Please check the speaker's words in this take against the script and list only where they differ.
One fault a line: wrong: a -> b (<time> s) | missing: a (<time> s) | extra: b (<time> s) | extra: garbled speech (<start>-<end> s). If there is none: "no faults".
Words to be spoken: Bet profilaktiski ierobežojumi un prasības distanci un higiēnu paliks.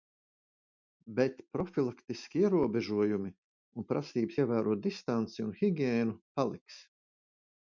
extra: ievērot (4.4 s)